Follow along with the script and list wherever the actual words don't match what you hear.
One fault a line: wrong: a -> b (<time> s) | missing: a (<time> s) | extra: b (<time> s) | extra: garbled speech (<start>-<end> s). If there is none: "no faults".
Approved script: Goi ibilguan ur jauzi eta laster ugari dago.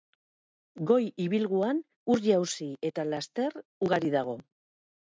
no faults